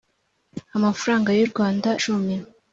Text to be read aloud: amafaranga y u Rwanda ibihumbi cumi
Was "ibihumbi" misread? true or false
true